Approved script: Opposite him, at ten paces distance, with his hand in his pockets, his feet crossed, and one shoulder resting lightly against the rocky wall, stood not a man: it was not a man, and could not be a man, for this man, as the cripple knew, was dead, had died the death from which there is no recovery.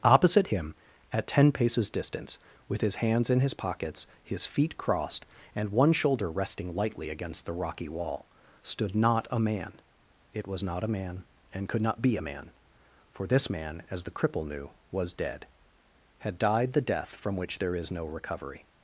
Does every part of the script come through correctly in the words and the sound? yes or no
no